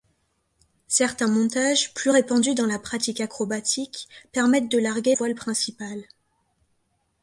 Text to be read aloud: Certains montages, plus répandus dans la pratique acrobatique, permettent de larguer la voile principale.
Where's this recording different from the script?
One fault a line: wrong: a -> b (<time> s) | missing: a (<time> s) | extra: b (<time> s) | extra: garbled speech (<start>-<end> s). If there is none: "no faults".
missing: la (5.1 s)